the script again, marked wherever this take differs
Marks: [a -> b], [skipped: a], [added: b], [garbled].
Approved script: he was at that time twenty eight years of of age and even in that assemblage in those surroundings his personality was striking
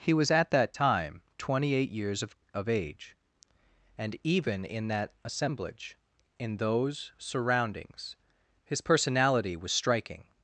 he was at that time twenty eight years of of age and even in that assemblage in those surroundings his personality was striking